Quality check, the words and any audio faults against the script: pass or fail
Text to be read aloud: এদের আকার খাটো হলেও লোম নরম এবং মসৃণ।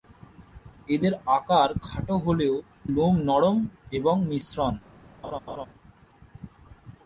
fail